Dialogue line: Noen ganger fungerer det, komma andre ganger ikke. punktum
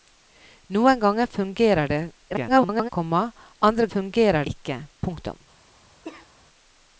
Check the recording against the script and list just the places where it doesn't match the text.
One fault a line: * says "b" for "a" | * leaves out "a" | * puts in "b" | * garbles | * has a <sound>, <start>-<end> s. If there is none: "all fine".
* garbles
* says "fungerer" for "ganger"
* has a cough, 6.0-6.3 s